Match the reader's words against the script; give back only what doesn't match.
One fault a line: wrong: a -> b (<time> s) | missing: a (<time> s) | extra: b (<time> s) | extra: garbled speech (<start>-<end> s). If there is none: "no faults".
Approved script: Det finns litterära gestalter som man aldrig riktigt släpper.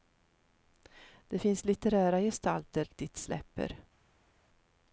missing: som man aldrig (2.8 s)